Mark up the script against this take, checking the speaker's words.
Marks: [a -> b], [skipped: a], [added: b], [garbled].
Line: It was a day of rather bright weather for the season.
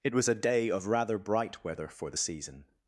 It was a day of rather bright weather for the season.